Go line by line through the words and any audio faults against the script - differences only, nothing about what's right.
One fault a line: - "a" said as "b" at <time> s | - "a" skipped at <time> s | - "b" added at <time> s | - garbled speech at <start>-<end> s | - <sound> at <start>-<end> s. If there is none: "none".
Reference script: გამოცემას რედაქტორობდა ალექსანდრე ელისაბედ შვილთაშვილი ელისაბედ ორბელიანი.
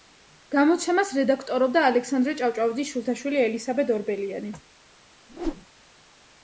- "ელისაბედ" said as "ჭავჭავაძის" at 2.4 s
- whoosh at 5.3-5.7 s